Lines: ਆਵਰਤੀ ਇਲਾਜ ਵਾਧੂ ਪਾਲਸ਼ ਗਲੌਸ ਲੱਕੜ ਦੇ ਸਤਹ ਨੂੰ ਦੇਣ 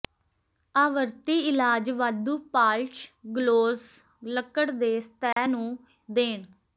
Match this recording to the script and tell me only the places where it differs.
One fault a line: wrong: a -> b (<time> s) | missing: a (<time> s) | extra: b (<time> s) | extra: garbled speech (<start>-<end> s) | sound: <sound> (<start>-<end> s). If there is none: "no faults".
sound: dropout (5.3-5.4 s)